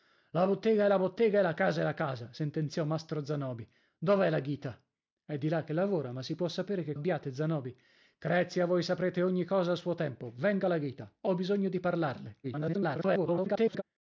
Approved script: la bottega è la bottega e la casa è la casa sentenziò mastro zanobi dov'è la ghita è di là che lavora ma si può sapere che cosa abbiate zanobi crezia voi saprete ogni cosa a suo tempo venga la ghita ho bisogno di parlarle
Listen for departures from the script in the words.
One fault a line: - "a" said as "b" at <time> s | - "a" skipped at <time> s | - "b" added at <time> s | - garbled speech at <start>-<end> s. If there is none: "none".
- "cosa" skipped at 7.0 s
- garbled speech at 12.4-13.8 s